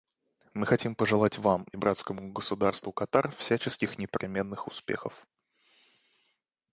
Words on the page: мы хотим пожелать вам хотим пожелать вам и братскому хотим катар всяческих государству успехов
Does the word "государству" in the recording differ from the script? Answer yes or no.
yes